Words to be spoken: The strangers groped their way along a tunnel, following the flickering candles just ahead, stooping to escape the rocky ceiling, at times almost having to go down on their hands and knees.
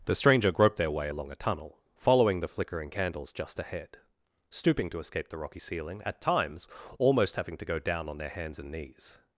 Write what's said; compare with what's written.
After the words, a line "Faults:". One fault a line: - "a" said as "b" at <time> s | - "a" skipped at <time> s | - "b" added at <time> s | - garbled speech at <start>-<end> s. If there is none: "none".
The stranger groped their way along a tunnel, following the flickering candles just ahead, stooping to escape the rocky ceiling, at times almost having to go down on their hands and knees.
Faults:
- "strangers" said as "stranger" at 0.1 s